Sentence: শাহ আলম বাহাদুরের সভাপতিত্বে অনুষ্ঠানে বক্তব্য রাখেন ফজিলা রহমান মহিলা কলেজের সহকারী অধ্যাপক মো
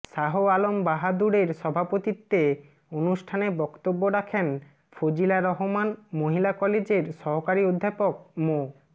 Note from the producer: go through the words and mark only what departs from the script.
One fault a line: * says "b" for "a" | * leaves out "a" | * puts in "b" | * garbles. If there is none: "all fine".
all fine